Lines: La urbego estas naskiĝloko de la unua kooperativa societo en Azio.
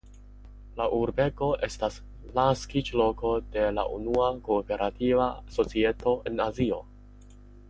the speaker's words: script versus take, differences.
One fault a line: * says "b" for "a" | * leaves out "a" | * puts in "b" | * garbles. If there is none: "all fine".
all fine